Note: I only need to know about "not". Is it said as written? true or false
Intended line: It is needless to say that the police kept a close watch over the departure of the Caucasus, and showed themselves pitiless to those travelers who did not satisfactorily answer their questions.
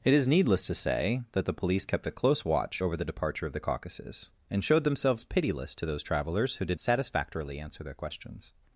false